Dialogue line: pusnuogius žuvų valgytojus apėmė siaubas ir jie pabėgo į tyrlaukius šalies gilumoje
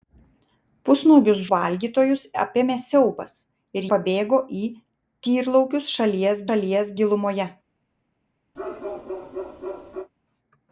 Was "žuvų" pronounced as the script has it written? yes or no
no